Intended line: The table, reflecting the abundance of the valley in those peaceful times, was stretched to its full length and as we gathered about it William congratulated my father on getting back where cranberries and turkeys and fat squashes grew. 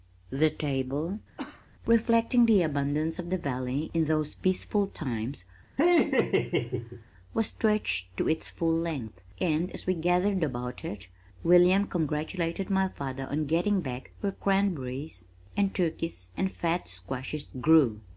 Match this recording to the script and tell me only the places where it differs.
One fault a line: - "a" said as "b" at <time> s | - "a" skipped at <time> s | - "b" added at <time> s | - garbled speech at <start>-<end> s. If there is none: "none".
none